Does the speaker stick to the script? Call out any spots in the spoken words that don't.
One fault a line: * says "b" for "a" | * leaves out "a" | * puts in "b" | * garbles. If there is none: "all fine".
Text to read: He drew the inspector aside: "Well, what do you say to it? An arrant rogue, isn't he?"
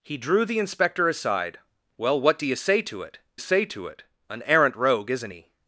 * puts in "say to it"